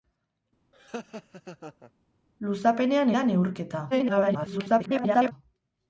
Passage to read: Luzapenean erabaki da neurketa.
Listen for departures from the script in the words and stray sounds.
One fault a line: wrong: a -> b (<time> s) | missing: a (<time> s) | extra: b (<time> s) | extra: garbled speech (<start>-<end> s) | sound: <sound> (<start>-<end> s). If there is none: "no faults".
sound: laugh (0.7-1.9 s)
missing: erabaki (3.1 s)
extra: garbled speech (3.9-5.3 s)